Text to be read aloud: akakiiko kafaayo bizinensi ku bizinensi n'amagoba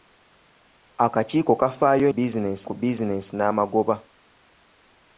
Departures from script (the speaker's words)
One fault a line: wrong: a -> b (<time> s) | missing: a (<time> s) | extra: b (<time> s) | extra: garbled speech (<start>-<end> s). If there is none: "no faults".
no faults